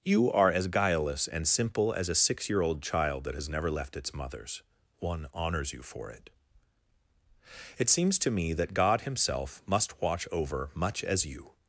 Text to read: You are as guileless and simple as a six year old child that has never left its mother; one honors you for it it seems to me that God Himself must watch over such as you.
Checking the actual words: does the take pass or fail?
fail